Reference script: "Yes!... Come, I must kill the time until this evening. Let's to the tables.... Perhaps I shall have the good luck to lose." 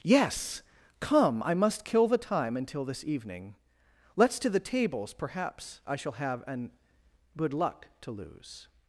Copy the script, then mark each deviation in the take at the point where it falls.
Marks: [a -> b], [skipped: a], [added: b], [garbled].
"Yes!... Come, I must kill the time until this evening. Let's to the tables.... Perhaps I shall have [the -> an] good luck to lose."